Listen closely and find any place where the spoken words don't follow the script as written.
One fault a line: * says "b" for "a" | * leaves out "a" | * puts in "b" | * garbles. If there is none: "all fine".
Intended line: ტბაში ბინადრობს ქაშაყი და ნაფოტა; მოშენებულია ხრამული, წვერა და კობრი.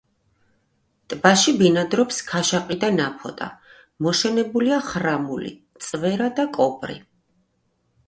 all fine